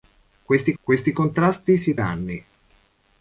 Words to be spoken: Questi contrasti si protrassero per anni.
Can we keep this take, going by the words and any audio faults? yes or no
no